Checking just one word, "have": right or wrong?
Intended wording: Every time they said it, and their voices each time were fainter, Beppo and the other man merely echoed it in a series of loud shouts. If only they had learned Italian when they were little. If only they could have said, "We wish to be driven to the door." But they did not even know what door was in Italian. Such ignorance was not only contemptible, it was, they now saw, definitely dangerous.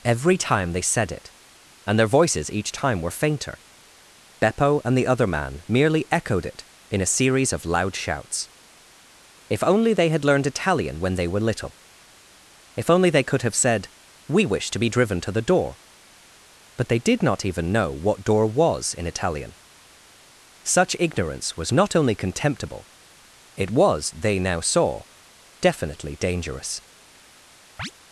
right